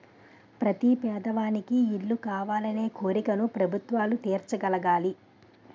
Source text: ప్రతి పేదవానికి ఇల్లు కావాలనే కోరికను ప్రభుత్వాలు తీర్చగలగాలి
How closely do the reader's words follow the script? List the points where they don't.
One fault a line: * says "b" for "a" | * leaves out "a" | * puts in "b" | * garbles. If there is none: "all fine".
all fine